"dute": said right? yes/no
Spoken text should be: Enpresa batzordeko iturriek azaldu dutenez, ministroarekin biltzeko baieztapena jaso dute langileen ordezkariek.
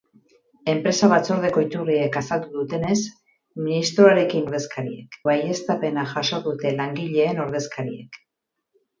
yes